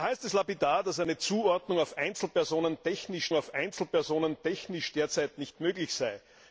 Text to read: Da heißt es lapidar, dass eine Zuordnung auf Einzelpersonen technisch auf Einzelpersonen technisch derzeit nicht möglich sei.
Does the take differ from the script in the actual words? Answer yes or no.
no